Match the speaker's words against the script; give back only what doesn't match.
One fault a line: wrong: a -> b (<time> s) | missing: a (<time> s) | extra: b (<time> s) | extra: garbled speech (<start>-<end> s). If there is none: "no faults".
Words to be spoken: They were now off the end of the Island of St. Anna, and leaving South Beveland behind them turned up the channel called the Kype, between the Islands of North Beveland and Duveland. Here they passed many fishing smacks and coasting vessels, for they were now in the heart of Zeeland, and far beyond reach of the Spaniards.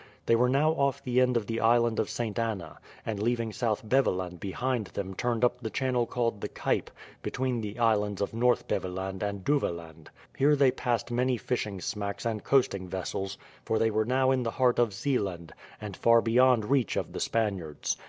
no faults